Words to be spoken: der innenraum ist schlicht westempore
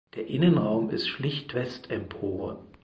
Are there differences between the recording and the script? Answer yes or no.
no